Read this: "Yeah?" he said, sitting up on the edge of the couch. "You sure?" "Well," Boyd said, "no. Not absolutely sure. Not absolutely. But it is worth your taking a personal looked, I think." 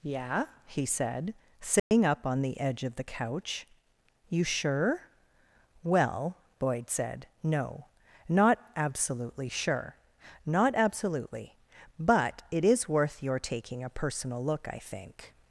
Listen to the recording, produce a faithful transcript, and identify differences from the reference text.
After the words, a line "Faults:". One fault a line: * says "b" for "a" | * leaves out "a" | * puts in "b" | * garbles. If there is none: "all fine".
"Yeah?" he said, sitting up on the edge of the couch. "You sure?" "Well," Boyd said, "no. Not absolutely sure. Not absolutely. But it is worth your taking a personal look, I think."
Faults:
* says "look" for "looked"